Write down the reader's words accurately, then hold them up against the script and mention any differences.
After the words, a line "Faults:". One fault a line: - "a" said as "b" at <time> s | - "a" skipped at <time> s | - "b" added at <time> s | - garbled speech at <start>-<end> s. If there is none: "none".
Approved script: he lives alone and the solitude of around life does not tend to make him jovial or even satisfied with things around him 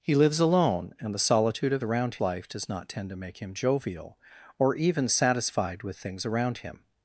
he lives alone and the solitude of around life does not tend to make him jovial or even satisfied with things around him
Faults:
none